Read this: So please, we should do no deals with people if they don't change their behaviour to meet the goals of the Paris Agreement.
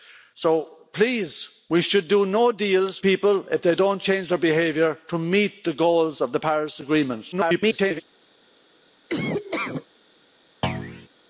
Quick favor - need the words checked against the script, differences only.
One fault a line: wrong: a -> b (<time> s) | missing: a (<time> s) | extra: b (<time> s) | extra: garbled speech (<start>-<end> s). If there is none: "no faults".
missing: with (3.0 s)
extra: garbled speech (7.3-8.0 s)